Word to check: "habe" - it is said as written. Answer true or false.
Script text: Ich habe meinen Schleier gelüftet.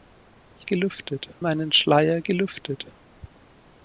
false